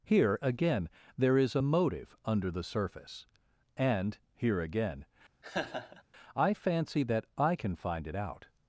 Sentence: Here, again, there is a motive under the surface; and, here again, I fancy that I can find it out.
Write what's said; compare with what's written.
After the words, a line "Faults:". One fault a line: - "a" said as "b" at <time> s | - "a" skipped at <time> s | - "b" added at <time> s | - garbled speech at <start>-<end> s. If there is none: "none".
Here, again, there is a motive under the surface; and, here again, I fancy that I can find it out.
Faults:
none